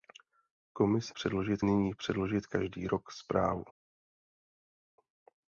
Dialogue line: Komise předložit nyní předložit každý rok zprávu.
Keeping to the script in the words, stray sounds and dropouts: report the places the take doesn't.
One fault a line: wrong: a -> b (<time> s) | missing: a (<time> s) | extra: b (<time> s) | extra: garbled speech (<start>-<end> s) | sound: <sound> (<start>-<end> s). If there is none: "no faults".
no faults